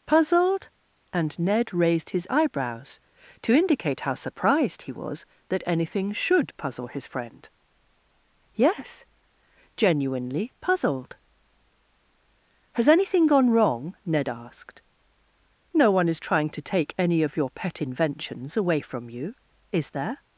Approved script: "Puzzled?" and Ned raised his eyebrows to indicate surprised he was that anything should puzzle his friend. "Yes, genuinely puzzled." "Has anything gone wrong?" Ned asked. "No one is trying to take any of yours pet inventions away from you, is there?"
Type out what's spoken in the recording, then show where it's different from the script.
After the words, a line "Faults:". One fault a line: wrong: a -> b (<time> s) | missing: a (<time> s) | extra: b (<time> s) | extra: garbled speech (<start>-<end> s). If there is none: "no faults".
"Puzzled?" and Ned raised his eyebrows to indicate how surprised he was that anything should puzzle his friend. "Yes, genuinely puzzled." "Has anything gone wrong?" Ned asked. "No one is trying to take any of your pet inventions away from you, is there?"
Faults:
extra: how (4.0 s)
wrong: yours -> your (17.4 s)